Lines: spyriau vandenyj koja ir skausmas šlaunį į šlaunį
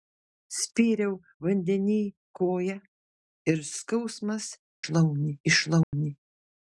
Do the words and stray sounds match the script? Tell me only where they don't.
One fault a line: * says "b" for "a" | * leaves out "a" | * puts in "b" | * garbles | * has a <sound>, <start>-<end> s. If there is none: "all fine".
* has a dropout, 5.8-5.9 s